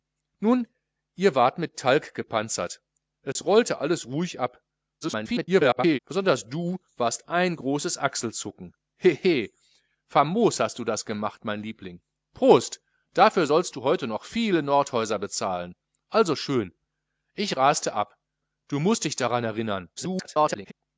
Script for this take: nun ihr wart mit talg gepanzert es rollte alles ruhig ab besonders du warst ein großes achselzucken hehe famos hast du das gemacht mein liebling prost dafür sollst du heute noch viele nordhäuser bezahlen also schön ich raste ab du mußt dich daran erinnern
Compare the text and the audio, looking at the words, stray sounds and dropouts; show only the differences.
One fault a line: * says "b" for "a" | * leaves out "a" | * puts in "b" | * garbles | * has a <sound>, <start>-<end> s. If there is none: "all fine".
* has a dropout, 3.3-3.4 s
* garbles
* garbles